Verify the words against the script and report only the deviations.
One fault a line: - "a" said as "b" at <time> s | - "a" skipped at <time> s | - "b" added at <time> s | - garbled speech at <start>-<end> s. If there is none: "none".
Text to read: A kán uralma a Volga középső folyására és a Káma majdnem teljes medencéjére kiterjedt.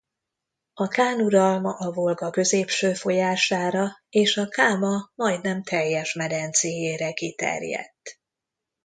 none